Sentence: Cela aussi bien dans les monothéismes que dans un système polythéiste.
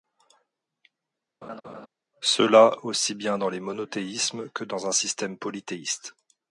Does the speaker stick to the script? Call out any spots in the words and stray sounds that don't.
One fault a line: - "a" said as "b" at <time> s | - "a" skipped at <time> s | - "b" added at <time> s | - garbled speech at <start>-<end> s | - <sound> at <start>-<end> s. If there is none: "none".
- laugh at 1.4-1.9 s